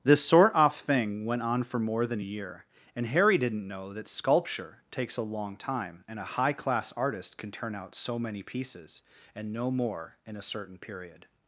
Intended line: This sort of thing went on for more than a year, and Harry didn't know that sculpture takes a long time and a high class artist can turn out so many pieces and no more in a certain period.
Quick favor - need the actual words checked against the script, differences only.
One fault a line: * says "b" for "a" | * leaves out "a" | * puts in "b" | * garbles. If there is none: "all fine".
* says "off" for "of"